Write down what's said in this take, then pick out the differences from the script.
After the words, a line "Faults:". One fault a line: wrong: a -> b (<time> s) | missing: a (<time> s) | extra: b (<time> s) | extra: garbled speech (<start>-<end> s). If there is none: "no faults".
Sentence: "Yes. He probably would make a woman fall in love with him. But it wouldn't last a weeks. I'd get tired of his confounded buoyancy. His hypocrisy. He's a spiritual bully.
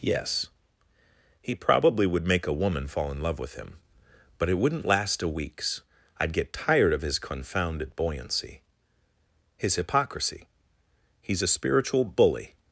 "Yes. He probably would make a woman fall in love with him. But it wouldn't last a weeks. I'd get tired of his confounded buoyancy. His hypocrisy. He's a spiritual bully.
Faults:
no faults